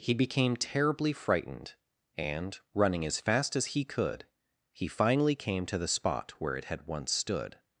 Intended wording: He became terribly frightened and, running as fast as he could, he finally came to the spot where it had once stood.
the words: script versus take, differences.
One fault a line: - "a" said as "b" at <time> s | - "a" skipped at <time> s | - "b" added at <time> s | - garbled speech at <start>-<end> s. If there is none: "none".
none